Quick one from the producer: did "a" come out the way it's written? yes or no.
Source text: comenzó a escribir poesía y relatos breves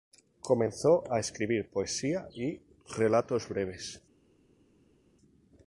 yes